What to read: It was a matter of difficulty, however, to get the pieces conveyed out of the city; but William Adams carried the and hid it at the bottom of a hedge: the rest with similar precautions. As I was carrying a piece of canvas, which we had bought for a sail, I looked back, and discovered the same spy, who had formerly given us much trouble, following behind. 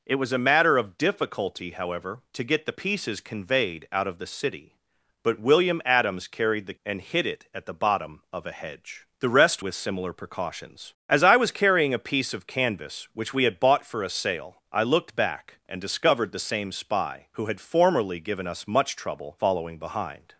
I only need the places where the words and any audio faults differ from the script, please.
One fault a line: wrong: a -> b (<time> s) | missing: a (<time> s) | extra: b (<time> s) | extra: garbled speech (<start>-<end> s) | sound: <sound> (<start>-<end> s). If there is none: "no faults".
no faults